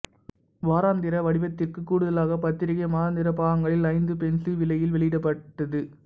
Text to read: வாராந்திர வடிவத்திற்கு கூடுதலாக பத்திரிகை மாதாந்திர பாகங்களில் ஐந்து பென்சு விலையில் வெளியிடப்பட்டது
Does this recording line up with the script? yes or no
yes